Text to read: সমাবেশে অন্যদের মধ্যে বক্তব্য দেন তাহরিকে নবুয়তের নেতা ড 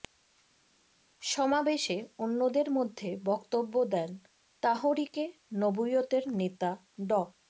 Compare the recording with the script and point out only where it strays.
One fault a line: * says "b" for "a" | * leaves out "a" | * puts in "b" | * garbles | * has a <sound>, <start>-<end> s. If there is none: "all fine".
all fine